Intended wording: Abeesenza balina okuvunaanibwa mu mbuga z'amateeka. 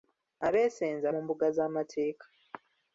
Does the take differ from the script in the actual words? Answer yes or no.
yes